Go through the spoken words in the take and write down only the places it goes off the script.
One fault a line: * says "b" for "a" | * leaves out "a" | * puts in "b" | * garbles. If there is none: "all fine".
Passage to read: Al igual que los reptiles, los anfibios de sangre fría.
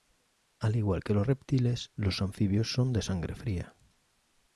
* puts in "son"